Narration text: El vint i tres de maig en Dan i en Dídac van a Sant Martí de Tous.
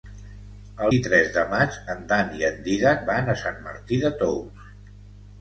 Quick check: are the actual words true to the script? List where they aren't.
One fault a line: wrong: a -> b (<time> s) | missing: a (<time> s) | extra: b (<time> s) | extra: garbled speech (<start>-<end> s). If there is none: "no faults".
missing: vint (0.9 s)